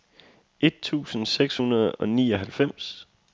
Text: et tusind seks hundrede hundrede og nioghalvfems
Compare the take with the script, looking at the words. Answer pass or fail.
fail